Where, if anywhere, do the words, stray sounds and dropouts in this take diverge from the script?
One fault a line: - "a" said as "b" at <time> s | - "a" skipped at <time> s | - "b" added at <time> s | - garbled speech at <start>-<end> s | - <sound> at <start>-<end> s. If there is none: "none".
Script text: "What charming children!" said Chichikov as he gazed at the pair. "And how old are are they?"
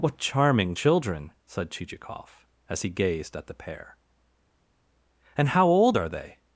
- "are" skipped at 6.1 s